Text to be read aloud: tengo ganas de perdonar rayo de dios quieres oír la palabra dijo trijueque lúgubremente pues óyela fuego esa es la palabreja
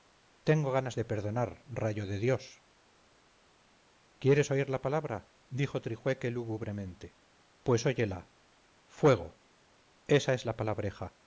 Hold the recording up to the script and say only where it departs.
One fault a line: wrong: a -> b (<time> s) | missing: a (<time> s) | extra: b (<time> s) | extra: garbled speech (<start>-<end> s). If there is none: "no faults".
no faults